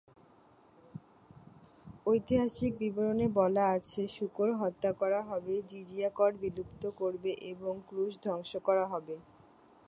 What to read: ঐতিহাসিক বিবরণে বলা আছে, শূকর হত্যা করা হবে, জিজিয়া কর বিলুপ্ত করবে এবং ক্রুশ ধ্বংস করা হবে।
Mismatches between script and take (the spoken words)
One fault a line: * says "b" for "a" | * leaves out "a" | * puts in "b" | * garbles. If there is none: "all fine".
all fine